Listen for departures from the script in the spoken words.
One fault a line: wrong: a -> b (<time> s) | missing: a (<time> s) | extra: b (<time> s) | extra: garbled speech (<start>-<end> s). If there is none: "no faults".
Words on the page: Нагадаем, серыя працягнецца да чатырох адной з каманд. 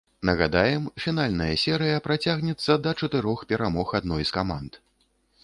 extra: фінальная (1.0 s)
extra: перамог (3.5 s)